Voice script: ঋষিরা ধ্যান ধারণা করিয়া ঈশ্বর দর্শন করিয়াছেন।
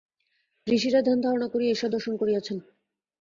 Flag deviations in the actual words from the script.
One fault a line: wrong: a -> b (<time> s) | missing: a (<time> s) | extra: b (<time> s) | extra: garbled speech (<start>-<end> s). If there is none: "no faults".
no faults